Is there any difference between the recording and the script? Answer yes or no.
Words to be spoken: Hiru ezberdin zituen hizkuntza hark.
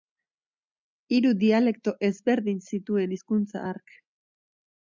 yes